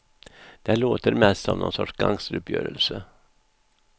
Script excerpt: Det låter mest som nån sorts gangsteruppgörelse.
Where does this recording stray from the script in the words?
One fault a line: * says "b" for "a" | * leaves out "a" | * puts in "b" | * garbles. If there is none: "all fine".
all fine